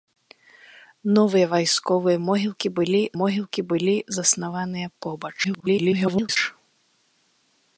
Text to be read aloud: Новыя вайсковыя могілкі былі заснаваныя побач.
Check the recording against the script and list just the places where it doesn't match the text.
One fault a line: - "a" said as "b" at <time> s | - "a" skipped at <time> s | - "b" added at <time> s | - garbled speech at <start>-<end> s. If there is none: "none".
- "могілкі былі" added at 3.2 s
- garbled speech at 5.4-6.4 s